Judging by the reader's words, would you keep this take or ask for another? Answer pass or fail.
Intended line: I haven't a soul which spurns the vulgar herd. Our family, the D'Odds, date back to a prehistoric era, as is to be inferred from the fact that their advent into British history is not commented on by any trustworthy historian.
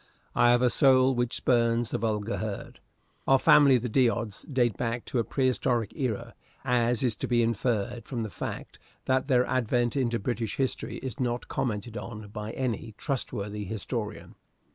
fail